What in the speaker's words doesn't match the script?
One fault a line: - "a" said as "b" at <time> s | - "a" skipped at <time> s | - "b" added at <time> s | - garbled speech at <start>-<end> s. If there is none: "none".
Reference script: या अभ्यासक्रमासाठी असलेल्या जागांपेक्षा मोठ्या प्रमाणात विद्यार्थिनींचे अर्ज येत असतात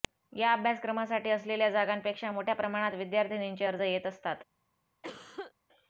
none